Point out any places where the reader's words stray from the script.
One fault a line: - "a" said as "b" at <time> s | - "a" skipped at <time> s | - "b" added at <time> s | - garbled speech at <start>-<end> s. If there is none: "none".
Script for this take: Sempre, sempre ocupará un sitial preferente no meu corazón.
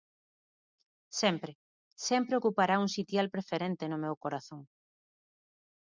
none